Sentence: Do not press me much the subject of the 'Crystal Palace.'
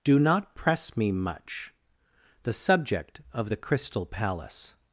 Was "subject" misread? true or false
false